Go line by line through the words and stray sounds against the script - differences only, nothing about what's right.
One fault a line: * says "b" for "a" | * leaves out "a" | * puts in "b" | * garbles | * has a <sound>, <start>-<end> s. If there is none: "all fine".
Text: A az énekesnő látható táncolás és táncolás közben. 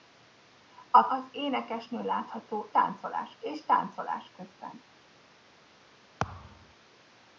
* has a thud, 6.2-6.8 s